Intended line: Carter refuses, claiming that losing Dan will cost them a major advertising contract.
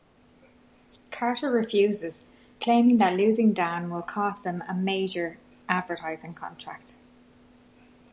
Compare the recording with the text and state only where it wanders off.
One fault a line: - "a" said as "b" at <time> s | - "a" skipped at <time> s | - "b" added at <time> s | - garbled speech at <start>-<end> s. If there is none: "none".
none